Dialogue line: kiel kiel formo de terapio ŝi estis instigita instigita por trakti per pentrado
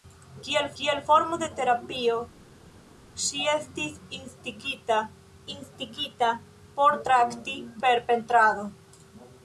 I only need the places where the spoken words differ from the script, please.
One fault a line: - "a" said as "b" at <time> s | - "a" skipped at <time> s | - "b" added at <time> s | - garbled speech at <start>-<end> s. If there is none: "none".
none